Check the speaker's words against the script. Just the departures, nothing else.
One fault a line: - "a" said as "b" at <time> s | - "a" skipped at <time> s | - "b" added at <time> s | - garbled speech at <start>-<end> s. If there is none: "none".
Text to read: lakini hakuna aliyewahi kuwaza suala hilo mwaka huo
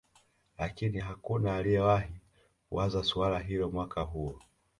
none